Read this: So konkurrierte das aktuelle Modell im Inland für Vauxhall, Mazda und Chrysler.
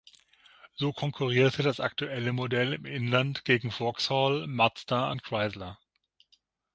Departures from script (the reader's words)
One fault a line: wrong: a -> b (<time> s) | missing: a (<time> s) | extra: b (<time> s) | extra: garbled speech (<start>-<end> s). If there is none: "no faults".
wrong: für -> gegen (3.5 s)